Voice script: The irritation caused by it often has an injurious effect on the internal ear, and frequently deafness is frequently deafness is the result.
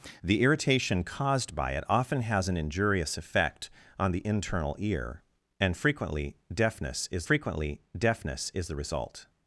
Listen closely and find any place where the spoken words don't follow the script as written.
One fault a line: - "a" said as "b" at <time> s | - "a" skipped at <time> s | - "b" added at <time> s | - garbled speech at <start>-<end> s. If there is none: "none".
none